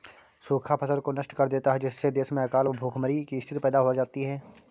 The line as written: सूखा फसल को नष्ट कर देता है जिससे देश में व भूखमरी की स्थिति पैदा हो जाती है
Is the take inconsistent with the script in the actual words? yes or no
yes